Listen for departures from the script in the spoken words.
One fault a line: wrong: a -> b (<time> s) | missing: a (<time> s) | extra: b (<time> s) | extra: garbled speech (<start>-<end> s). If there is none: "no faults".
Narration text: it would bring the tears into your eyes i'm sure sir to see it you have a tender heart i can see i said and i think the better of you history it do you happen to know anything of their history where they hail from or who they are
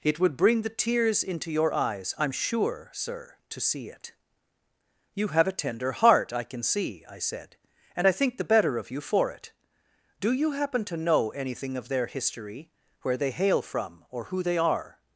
wrong: history -> for (9.0 s)